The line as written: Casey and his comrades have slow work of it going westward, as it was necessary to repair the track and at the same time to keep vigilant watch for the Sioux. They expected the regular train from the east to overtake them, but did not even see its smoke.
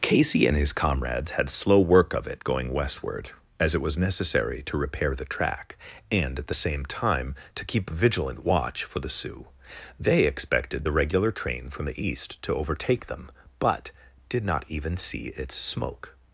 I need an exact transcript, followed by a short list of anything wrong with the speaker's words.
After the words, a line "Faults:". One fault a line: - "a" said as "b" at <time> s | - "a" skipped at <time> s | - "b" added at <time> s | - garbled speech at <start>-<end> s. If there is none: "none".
Casey and his comrades had slow work of it going westward, as it was necessary to repair the track and at the same time to keep vigilant watch for the Sioux. They expected the regular train from the east to overtake them, but did not even see its smoke.
Faults:
- "have" said as "had" at 1.3 s